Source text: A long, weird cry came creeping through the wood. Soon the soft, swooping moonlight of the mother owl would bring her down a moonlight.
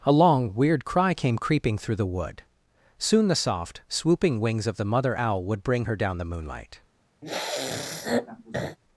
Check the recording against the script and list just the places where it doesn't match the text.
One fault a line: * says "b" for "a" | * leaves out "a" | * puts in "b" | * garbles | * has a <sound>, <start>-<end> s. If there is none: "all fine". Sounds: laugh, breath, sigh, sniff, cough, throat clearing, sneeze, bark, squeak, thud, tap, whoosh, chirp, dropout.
* says "wings" for "moonlight"
* says "the" for "a"
* has a sniff, 7.2-8.8 s